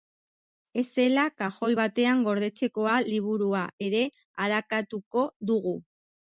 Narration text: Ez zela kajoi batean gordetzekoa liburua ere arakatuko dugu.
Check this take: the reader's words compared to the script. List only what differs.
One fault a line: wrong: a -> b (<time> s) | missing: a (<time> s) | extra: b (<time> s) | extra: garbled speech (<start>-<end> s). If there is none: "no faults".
no faults